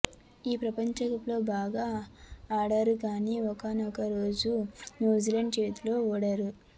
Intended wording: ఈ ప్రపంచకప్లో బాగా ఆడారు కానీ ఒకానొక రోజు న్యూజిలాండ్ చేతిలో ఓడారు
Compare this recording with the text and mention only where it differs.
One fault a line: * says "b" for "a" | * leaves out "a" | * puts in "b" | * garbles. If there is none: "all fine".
all fine